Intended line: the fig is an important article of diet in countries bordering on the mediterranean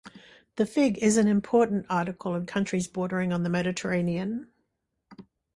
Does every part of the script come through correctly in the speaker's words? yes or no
no